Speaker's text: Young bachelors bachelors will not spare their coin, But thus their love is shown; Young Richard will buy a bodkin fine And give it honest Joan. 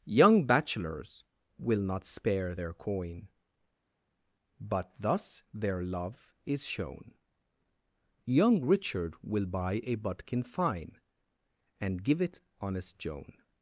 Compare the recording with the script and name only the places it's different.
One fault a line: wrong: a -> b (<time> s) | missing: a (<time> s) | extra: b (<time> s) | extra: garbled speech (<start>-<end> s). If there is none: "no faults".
missing: bachelors (1.2 s)